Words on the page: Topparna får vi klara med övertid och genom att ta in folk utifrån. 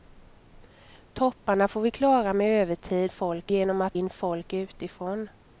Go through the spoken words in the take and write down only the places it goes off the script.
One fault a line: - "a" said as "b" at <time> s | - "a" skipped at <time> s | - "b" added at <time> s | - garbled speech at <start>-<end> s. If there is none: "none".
- "och" said as "folk" at 3.1 s
- "ta" skipped at 3.9 s